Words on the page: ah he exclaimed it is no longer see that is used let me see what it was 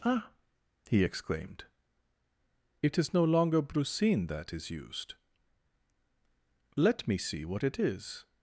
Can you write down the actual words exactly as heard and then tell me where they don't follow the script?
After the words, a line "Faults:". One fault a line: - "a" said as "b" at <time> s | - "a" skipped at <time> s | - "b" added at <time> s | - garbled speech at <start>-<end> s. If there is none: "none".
ah he exclaimed it is no longer brucine that is used let me see what it is
Faults:
- "see" said as "brucine" at 3.6 s
- "was" said as "is" at 7.8 s